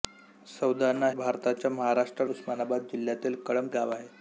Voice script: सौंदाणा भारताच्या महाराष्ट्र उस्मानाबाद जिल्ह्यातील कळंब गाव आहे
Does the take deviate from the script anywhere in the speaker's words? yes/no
no